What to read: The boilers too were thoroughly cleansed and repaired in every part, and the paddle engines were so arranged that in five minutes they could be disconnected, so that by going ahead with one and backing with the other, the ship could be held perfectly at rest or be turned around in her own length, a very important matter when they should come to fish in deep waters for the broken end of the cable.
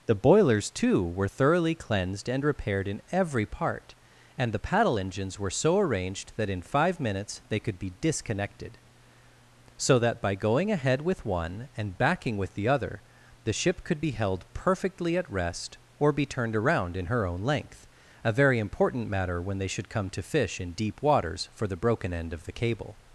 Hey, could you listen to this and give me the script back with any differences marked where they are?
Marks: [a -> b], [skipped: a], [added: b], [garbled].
The boilers too were thoroughly cleansed and repaired in every part, and the paddle engines were so arranged that in five minutes they could be disconnected, so that by going ahead with one and backing with the other, the ship could be held perfectly at rest or be turned around in her own length, a very important matter when they should come to fish in deep waters for the broken end of the cable.